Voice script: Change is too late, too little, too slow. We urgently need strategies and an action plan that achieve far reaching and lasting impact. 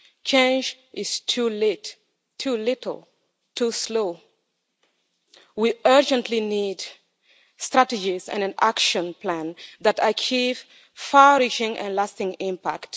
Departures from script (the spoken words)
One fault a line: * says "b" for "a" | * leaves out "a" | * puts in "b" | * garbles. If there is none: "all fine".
all fine